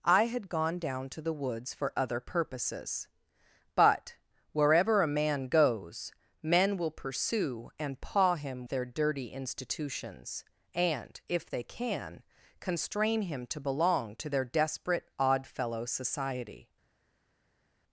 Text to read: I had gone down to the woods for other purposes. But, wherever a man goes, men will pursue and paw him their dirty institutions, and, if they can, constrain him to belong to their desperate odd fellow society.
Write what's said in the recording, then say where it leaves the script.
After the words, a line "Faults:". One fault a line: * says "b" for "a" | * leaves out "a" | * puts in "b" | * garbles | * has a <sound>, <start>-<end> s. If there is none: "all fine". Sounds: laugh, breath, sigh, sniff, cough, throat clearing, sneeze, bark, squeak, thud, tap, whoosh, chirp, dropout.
I had gone down to the woods for other purposes. But, wherever a man goes, men will pursue and paw him their dirty institutions, and, if they can, constrain him to belong to their desperate odd fellow society.
Faults:
all fine